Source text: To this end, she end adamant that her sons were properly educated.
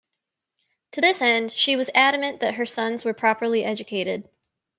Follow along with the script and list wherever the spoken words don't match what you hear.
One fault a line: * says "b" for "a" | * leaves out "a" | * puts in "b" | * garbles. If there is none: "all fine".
* says "was" for "end"